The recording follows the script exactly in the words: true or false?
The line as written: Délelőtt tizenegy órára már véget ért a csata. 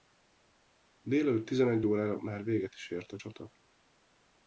false